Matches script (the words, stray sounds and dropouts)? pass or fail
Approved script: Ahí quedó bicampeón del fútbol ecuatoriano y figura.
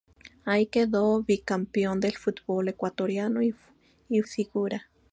pass